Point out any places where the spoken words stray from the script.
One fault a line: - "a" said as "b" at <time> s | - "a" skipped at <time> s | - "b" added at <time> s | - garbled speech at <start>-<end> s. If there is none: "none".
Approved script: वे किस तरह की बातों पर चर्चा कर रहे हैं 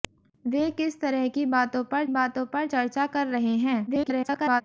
- "बातों पर" added at 2.1 s
- garbled speech at 3.9-4.6 s